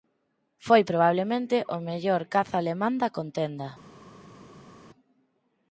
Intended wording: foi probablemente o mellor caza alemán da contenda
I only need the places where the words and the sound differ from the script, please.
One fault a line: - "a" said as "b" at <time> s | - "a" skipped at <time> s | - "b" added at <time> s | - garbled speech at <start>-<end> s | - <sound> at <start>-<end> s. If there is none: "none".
none